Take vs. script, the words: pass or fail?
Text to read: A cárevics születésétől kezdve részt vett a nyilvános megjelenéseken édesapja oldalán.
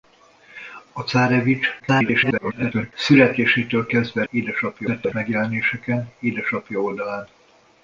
fail